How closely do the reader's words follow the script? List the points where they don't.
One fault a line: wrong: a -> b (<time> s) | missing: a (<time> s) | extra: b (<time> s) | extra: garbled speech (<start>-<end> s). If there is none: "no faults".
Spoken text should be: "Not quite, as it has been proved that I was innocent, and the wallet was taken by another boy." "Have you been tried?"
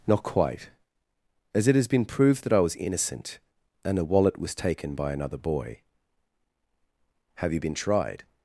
no faults